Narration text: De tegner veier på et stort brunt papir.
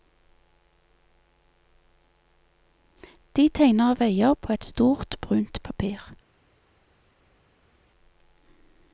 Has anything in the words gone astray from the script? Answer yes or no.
no